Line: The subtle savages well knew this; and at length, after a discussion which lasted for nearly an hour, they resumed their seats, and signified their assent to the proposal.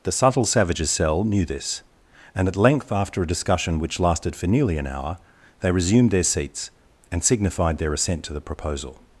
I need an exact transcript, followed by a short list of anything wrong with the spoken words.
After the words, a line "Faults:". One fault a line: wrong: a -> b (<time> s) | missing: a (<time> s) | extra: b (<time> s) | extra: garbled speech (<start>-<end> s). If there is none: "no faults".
The subtle savages cell knew this; and at length, after a discussion which lasted for nearly an hour, they resumed their seats, and signified their assent to the proposal.
Faults:
wrong: well -> cell (0.9 s)